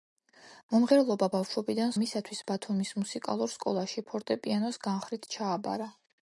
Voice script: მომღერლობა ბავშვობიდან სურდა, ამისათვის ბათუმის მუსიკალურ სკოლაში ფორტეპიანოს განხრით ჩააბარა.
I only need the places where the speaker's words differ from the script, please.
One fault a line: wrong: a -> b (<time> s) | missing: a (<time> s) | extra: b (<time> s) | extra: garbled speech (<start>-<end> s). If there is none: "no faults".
missing: სურდა (1.9 s)